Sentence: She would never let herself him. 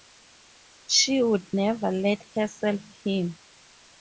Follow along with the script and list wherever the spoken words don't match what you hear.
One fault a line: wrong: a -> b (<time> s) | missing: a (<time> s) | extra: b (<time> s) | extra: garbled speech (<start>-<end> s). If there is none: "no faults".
no faults